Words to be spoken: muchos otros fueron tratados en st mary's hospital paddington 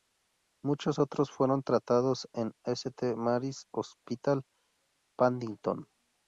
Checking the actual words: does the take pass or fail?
pass